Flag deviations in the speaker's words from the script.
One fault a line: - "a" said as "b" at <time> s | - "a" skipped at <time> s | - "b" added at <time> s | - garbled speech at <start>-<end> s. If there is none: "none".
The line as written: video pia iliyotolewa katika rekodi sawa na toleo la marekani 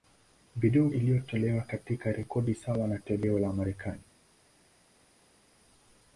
- "pia" skipped at 0.9 s